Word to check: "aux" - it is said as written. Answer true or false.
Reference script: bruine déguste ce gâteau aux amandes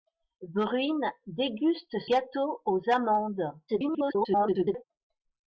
true